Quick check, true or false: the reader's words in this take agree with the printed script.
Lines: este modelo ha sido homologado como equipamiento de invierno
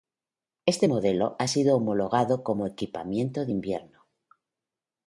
true